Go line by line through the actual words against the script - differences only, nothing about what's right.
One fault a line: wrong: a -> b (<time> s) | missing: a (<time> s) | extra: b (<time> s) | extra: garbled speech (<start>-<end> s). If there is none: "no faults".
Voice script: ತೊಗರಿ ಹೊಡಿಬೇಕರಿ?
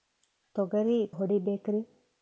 no faults